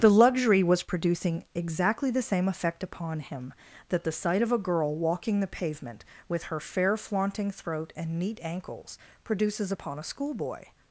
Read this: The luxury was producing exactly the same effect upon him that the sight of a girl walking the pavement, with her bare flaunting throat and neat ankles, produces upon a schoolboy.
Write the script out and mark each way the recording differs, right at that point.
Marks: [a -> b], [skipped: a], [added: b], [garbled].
The luxury was producing exactly the same effect upon him that the sight of a girl walking the pavement, with her [bare -> fair] flaunting throat and neat ankles, produces upon a schoolboy.